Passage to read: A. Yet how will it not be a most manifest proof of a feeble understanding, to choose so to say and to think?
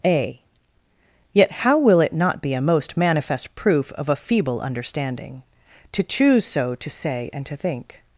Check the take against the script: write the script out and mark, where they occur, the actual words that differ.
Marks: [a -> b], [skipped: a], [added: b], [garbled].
A. Yet how will it not be a most manifest proof of a feeble understanding, to choose so to say and to think?